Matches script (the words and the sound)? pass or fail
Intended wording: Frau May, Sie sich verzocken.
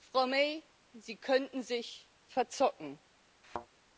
fail